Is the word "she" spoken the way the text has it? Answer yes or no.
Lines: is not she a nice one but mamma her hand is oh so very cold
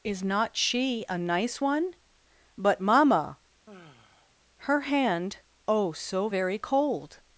yes